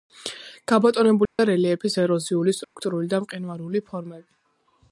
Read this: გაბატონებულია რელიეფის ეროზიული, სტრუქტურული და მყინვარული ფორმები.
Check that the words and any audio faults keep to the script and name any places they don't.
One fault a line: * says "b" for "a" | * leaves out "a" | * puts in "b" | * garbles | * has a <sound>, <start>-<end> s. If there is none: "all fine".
* has a dropout, 1.3-1.4 s
* has a dropout, 2.6-2.8 s